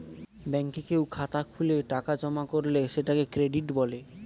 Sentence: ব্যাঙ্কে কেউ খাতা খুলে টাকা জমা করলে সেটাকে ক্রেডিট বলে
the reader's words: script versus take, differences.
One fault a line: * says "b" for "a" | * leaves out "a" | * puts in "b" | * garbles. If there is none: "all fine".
all fine